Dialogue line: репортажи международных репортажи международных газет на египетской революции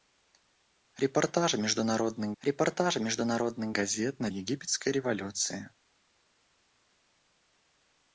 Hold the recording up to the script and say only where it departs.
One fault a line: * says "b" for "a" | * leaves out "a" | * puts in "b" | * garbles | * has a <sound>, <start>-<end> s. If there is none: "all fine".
all fine